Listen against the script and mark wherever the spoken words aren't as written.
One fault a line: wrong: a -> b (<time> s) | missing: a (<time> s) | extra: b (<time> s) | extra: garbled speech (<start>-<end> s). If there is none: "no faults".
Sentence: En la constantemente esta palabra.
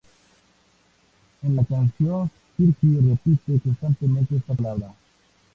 extra: canción Fergie repite (1.6 s)